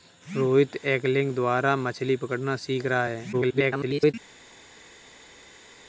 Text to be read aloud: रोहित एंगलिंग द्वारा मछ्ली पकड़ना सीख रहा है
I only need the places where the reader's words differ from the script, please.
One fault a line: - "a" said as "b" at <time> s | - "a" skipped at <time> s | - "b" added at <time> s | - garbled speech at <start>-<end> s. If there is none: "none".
- garbled speech at 3.3-4.1 s